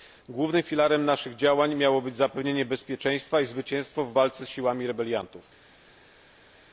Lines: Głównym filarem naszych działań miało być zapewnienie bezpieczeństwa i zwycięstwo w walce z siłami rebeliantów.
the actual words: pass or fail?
pass